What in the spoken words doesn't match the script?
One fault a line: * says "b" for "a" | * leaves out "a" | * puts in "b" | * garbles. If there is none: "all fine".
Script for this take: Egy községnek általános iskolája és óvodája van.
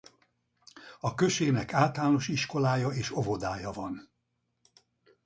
* says "A" for "Egy"